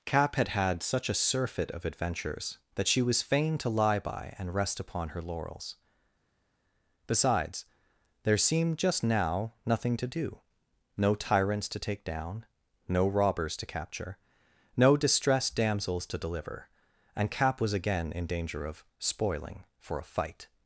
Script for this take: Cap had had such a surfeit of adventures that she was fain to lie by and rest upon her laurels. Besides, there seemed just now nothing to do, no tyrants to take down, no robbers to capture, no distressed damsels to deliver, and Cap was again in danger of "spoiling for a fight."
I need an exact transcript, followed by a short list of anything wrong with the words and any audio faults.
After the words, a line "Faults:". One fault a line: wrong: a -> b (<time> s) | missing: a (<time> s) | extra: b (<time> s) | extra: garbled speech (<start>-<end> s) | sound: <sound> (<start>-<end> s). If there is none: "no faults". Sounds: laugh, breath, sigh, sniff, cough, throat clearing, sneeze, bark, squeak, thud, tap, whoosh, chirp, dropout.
Cap had had such a surfeit of adventures that she was fain to lie by and rest upon her laurels. Besides, there seemed just now nothing to do, no tyrants to take down, no robbers to capture, no distressed damsels to deliver, and Cap was again in danger of "spoiling for a fight."
Faults:
no faults